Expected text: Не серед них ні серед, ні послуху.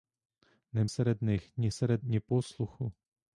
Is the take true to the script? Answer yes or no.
yes